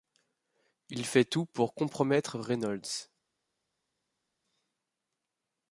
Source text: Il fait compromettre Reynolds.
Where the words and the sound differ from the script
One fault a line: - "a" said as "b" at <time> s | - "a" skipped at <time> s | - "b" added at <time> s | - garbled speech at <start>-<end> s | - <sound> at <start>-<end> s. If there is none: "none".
- "tout pour" added at 1.2 s